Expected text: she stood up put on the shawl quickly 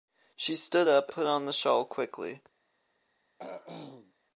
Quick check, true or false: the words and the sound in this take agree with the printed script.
false